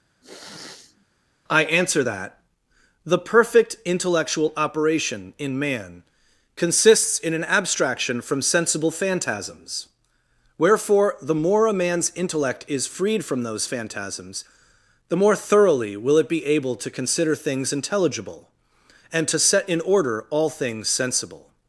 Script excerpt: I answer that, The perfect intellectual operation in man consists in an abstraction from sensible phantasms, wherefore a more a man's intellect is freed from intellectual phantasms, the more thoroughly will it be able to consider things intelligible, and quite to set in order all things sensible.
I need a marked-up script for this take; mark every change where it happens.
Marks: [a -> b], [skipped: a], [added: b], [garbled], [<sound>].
[sniff] I answer that, The perfect intellectual operation in man consists in an abstraction from sensible phantasms, wherefore [a -> the] more a man's intellect is freed from [intellectual -> those] phantasms, the more thoroughly will it be able to consider things intelligible, and [skipped: quite] to set in order all things sensible.